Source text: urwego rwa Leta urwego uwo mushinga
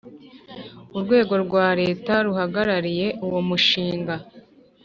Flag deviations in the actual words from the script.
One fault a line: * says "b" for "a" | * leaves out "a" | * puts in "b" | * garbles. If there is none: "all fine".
* says "ruhagarariye" for "urwego"